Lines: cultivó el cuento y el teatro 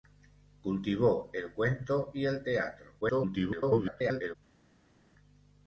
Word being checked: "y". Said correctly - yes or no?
yes